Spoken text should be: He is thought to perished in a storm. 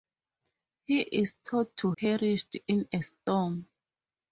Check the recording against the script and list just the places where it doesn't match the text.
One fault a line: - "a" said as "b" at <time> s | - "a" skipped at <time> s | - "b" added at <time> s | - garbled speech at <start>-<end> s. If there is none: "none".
none